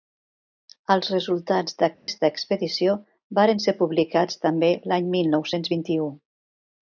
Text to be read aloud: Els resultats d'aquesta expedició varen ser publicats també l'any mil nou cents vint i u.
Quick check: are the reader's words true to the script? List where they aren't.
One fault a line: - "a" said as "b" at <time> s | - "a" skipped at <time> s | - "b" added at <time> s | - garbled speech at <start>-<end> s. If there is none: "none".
none